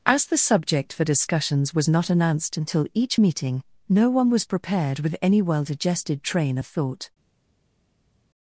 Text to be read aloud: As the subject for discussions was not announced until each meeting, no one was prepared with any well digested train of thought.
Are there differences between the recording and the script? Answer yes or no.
no